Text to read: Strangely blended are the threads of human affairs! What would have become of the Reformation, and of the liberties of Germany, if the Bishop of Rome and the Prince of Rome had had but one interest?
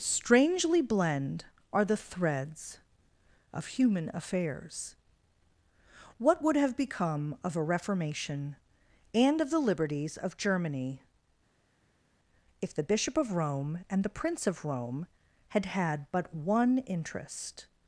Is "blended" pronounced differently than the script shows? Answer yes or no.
yes